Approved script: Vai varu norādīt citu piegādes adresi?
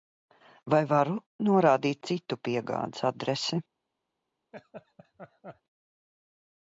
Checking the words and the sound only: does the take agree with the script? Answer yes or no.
no